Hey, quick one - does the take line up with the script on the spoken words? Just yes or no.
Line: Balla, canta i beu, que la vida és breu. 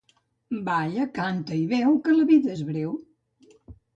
yes